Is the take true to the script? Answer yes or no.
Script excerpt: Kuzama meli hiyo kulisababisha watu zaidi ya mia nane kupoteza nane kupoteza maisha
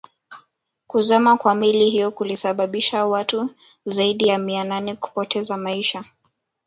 no